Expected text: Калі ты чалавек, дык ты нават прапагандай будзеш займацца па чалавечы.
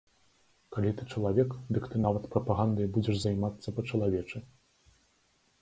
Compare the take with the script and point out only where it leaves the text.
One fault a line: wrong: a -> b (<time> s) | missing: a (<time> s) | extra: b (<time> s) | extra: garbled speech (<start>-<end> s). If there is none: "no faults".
no faults